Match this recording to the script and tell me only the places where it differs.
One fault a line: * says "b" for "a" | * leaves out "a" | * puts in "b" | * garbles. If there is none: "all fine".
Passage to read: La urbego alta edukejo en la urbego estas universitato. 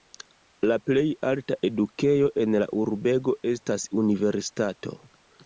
* says "plej" for "urbego"